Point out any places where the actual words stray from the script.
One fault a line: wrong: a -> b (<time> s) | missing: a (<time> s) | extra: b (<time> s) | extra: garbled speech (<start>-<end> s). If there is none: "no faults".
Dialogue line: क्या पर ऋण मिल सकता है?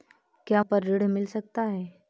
no faults